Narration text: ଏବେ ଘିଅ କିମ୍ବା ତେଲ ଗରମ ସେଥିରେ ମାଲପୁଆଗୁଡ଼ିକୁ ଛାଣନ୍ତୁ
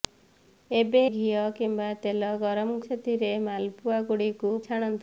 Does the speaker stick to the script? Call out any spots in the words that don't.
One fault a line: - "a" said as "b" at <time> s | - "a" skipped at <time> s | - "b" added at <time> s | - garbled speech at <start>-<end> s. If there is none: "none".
none